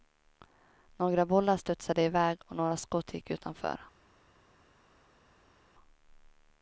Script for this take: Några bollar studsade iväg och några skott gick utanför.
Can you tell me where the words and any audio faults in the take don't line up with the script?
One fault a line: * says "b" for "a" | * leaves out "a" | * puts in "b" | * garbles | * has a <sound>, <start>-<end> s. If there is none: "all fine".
all fine